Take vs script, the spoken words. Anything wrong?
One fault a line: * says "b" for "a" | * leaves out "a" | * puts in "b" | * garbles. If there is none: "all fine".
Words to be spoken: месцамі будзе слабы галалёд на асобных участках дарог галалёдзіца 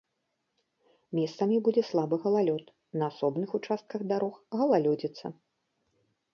all fine